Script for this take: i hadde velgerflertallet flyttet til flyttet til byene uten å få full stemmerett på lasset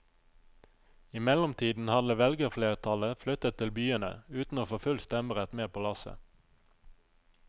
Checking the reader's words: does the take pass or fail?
fail